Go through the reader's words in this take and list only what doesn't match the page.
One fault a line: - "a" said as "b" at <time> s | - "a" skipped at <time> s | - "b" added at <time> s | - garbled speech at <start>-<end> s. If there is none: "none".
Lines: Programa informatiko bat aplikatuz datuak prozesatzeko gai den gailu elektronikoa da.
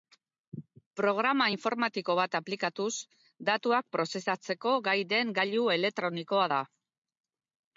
none